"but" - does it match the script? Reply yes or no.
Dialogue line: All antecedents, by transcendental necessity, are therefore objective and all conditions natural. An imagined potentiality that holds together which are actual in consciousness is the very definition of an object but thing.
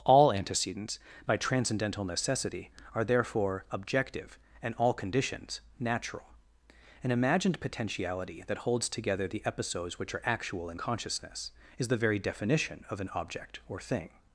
no